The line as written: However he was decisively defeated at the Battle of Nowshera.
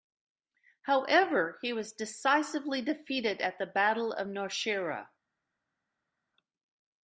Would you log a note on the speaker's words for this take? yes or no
no